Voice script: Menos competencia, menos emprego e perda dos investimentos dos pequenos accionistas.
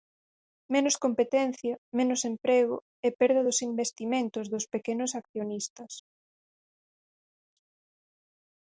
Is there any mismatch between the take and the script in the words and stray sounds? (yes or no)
no